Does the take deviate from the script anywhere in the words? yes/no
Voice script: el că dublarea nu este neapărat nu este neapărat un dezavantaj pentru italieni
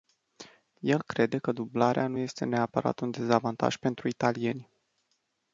yes